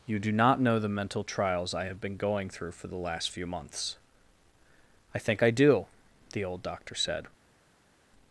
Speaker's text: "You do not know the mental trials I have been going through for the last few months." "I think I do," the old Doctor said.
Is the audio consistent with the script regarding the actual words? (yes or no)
yes